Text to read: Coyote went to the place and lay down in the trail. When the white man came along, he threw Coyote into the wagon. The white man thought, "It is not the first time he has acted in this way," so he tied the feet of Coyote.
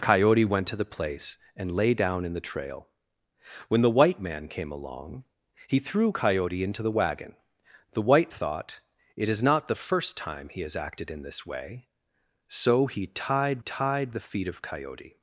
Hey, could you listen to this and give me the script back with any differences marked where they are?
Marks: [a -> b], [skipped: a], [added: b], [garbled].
Coyote went to the place and lay down in the trail. When the white man came along, he threw Coyote into the wagon. The white [skipped: man] thought, "It is not the first time he has acted in this way," so he tied [added: tied] the feet of Coyote.